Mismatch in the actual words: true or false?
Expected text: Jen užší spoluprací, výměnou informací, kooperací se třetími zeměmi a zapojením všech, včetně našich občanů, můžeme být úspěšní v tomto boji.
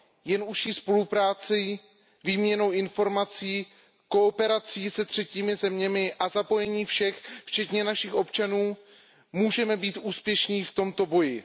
false